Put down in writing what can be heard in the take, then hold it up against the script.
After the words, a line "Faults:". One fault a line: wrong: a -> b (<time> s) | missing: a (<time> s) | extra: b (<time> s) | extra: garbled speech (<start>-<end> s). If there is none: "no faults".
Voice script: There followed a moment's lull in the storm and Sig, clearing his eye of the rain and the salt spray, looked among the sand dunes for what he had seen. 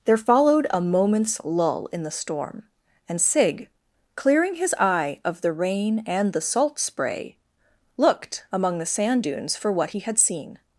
There followed a moment's lull in the storm and Sig, clearing his eye of the rain and the salt spray, looked among the sand dunes for what he had seen.
Faults:
no faults